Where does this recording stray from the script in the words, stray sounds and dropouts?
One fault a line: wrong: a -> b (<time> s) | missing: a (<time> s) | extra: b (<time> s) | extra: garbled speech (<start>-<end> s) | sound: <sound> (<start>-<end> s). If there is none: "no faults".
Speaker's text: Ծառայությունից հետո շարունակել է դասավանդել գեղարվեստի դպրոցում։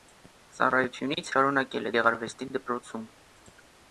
missing: հետո (1.3 s)
missing: դասավանդել (1.9 s)